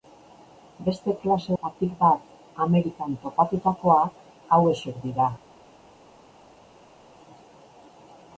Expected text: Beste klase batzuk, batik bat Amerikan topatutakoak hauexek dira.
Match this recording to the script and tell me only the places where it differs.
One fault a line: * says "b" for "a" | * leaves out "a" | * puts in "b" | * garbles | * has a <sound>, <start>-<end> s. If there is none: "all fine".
* leaves out "batzuk"